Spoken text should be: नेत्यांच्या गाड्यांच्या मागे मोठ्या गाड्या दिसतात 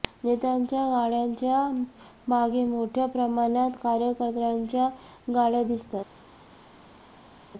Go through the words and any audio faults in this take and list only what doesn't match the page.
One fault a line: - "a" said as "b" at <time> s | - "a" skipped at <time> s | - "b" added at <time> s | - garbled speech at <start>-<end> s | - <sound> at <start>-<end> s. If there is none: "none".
- "प्रमाणात कार्यकर्त्यांच्या" added at 3.1 s